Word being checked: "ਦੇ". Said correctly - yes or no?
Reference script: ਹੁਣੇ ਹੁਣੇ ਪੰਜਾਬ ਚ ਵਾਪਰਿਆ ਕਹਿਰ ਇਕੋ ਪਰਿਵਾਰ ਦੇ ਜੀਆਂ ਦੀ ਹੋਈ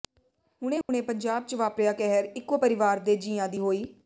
yes